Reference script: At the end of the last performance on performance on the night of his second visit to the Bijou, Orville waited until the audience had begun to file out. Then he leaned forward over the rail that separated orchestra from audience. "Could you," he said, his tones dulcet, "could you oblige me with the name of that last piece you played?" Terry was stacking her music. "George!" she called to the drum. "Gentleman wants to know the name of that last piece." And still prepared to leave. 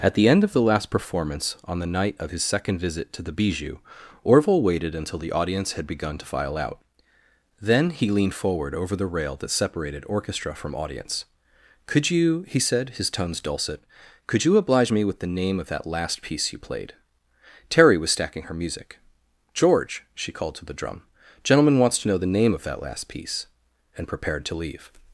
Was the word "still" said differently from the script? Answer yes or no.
yes